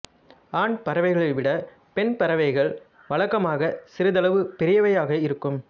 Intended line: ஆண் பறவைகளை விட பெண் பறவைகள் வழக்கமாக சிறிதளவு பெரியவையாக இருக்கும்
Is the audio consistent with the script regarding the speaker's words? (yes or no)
yes